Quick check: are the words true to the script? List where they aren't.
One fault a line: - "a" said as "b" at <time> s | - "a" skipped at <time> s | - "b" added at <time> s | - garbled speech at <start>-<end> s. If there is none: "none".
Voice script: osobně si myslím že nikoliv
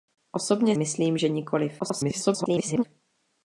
- "si" skipped at 0.8 s
- garbled speech at 1.8-2.8 s